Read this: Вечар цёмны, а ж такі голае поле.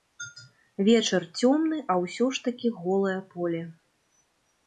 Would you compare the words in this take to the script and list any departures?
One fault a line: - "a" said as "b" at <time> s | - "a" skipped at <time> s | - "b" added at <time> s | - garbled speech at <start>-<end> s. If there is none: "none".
- "ўсё" added at 2.0 s